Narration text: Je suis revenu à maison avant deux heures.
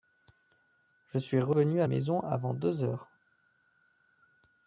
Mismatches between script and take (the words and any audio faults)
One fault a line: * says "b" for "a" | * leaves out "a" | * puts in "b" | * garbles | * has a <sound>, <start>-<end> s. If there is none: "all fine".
all fine